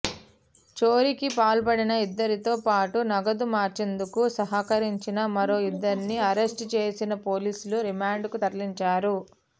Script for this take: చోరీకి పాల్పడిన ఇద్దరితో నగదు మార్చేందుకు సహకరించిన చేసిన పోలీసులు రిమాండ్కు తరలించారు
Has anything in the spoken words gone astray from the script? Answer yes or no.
yes